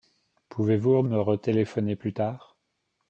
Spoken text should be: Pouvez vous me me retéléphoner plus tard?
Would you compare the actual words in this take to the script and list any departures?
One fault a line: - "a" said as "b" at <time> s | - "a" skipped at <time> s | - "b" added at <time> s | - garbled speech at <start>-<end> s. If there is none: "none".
- "me" skipped at 1.2 s